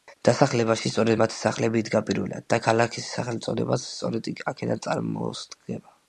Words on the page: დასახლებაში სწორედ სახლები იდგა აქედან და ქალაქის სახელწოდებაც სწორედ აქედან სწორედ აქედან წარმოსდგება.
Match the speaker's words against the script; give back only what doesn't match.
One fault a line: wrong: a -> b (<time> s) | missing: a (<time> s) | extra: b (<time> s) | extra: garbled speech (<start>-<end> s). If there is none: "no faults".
extra: მათი (1.2 s)
wrong: აქედან -> პირველად (2.1 s)
missing: სწორედ აქედან (4.8 s)